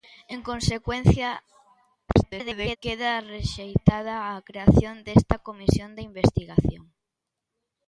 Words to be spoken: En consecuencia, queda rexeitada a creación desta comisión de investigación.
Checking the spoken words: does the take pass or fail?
fail